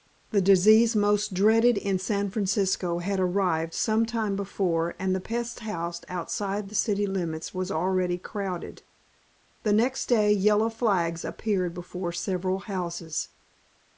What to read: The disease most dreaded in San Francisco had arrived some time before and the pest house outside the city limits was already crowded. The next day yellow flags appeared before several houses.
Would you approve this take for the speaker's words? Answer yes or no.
yes